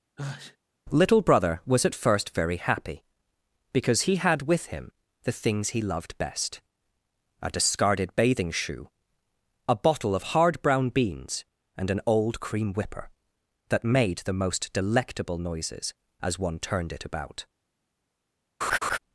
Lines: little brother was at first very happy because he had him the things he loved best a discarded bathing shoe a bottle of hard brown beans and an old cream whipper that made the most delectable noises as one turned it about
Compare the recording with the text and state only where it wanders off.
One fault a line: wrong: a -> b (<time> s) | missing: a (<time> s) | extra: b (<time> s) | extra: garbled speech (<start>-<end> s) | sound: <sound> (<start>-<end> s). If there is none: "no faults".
sound: sneeze (0.2-0.6 s)
extra: with (4.4 s)
sound: laugh (18.6-19.0 s)